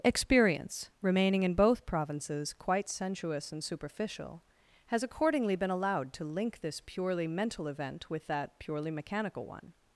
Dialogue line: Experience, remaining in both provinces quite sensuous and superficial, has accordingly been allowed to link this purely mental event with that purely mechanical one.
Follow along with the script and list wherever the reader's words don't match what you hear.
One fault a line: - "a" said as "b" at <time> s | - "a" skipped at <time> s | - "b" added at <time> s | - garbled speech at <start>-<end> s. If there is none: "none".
none